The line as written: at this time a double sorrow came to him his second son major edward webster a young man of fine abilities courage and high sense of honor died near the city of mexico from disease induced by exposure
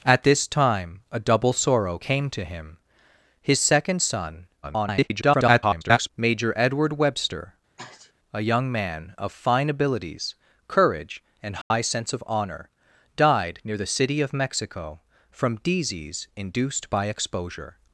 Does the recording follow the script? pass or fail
fail